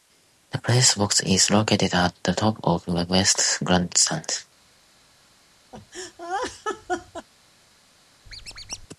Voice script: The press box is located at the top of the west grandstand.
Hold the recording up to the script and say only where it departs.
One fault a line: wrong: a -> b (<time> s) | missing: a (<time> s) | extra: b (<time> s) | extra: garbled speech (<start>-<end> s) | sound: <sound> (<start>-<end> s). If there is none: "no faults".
sound: laugh (5.7-7.3 s)
sound: squeak (8.3-8.9 s)